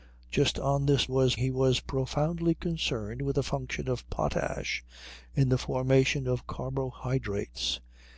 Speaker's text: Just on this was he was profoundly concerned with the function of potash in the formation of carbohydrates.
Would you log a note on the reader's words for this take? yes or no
no